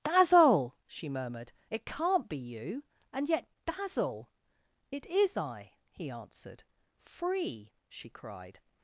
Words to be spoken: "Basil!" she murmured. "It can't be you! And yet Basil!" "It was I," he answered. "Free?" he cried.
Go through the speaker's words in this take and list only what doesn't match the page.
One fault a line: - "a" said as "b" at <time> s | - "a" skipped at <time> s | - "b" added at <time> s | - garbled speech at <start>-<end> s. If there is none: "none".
- "was" said as "is" at 5.1 s
- "he" said as "she" at 7.9 s